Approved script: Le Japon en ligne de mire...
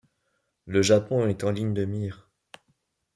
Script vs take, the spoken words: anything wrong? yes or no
yes